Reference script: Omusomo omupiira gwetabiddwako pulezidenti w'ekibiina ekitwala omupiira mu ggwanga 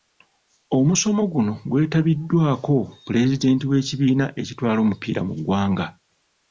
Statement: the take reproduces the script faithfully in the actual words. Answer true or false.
false